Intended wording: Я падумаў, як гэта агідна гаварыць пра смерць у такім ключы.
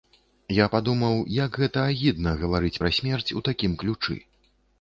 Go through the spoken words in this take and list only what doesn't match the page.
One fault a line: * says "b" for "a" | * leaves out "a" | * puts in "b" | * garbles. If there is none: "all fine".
all fine